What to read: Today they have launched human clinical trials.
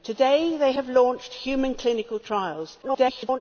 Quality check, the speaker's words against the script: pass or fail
fail